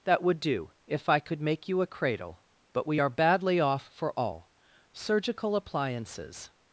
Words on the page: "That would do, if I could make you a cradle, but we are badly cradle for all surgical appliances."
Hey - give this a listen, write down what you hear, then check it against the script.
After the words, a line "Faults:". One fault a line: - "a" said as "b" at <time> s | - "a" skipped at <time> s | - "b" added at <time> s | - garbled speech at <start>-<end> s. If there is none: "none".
"That would do, if I could make you a cradle, but we are badly off for all surgical appliances."
Faults:
- "cradle" said as "off" at 3.6 s